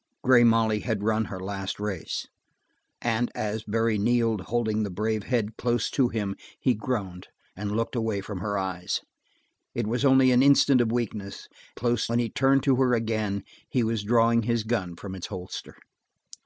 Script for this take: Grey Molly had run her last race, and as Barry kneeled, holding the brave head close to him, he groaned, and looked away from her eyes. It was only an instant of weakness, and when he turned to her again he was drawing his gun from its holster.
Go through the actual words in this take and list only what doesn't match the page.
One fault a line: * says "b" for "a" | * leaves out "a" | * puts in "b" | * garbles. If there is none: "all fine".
* says "close" for "and"